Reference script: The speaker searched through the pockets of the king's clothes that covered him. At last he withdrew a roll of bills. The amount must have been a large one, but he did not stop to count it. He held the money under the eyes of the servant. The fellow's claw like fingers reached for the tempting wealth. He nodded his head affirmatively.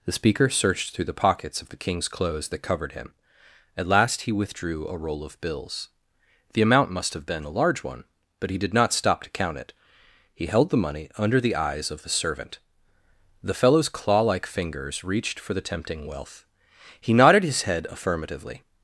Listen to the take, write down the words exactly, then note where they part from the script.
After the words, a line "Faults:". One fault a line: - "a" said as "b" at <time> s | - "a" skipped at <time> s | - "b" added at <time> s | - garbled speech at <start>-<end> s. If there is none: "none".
The speaker searched through the pockets of the king's clothes that covered him. At last he withdrew a roll of bills. The amount must have been a large one, but he did not stop to count it. He held the money under the eyes of the servant. The fellow's claw like fingers reached for the tempting wealth. He nodded his head affirmatively.
Faults:
none